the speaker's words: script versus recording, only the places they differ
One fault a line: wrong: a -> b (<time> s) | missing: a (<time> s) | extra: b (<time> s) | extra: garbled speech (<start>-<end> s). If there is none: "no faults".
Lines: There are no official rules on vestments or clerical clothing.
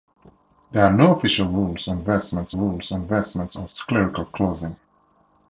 extra: rules on vestments (2.5 s)